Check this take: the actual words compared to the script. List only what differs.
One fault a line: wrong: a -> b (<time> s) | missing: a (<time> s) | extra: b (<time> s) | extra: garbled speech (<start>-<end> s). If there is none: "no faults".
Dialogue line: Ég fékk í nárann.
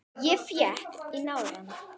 no faults